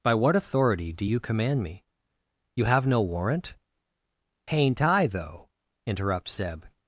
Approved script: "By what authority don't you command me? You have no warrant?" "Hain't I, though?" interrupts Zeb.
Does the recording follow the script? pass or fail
fail